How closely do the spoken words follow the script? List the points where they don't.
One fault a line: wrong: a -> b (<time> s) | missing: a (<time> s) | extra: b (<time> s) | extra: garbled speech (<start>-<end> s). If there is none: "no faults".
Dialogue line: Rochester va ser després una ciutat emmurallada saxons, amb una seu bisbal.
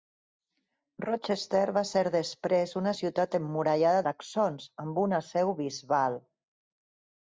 no faults